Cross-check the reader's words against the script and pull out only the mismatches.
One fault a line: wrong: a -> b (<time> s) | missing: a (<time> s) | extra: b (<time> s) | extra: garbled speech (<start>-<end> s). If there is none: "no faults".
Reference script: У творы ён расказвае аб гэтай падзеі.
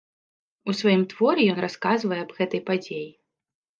extra: сваім (0.8 s)